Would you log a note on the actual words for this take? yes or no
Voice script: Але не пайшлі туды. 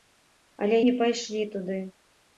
no